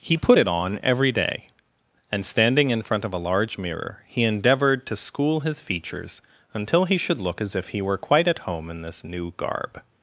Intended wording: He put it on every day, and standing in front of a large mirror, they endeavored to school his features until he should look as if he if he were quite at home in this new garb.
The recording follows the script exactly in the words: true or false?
false